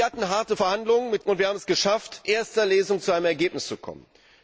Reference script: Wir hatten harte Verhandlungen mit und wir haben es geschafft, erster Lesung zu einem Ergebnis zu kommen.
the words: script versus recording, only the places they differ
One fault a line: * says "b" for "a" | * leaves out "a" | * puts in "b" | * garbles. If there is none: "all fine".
all fine